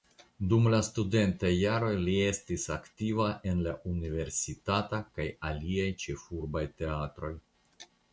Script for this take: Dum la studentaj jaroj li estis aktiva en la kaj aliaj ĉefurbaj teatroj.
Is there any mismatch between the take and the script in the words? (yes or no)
yes